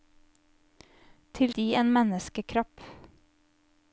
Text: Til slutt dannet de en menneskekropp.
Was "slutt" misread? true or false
true